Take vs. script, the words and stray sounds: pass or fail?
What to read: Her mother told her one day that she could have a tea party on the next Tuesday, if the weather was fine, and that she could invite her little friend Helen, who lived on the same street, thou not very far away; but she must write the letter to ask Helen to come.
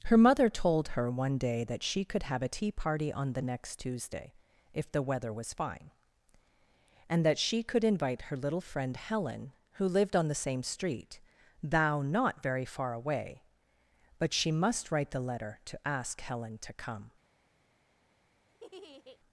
fail